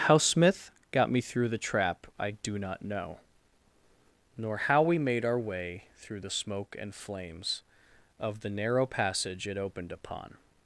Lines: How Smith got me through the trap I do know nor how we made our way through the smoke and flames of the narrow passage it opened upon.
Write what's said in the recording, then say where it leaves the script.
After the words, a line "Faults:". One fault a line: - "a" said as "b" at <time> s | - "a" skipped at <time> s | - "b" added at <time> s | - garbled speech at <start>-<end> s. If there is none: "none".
How Smith got me through the trap I do not know nor how we made our way through the smoke and flames of the narrow passage it opened upon.
Faults:
- "not" added at 2.6 s